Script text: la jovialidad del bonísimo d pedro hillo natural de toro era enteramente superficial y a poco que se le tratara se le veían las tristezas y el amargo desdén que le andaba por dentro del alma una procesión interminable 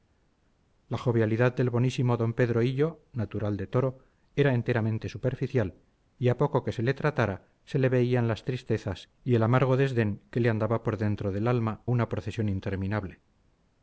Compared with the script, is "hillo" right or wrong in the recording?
right